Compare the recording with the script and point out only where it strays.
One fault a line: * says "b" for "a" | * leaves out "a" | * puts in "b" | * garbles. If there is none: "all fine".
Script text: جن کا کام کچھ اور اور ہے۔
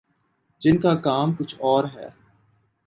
* leaves out "اور"